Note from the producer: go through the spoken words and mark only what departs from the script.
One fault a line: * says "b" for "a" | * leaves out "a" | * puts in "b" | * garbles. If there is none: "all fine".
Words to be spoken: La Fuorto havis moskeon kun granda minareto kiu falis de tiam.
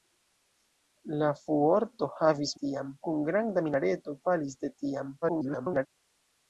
* says "tiam" for "moskeon"
* leaves out "kiu"
* garbles